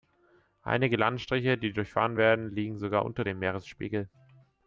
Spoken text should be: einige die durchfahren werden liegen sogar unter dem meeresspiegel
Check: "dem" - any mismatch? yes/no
no